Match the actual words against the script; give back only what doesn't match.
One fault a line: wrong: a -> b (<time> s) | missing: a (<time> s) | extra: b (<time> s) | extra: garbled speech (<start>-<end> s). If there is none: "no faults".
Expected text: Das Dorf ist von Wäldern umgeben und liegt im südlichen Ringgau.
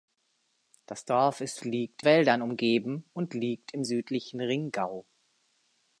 wrong: von -> liegt (1.6 s)